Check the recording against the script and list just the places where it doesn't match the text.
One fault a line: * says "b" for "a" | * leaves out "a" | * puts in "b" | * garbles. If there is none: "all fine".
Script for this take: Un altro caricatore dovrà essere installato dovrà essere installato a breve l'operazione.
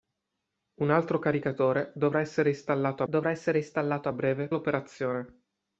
all fine